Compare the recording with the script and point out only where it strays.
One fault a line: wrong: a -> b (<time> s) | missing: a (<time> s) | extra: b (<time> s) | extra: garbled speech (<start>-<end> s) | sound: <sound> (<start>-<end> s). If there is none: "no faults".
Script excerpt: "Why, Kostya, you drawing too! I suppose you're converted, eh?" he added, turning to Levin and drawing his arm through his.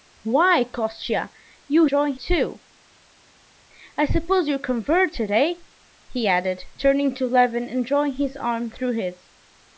no faults